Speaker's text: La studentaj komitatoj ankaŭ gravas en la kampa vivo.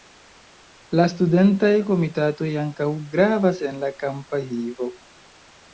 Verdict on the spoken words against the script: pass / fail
pass